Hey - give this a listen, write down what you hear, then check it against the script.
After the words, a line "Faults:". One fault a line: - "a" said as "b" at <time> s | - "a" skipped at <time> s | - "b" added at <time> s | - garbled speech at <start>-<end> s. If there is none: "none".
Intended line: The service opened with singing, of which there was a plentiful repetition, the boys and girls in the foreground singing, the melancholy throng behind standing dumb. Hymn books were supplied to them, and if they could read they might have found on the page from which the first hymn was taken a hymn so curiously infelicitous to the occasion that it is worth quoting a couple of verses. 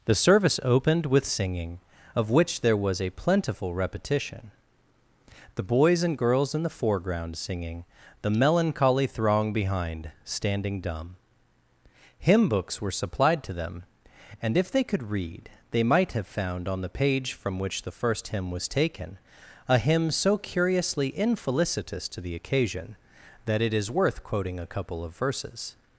The service opened with singing, of which there was a plentiful repetition, the boys and girls in the foreground singing, the melancholy throng behind standing dumb. Hymn books were supplied to them, and if they could read they might have found on the page from which the first hymn was taken a hymn so curiously infelicitous to the occasion that it is worth quoting a couple of verses.
Faults:
none